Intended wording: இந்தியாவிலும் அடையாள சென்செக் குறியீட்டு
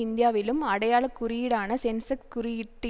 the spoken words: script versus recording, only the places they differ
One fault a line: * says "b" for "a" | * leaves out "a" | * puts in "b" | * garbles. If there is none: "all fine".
* puts in "குறியீடான"